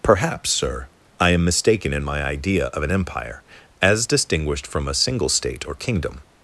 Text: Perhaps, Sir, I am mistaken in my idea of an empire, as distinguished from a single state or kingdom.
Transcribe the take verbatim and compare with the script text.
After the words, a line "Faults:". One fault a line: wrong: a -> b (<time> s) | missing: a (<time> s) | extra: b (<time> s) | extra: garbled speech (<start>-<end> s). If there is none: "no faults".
Perhaps, Sir, I am mistaken in my idea of an empire, as distinguished from a single state or kingdom.
Faults:
no faults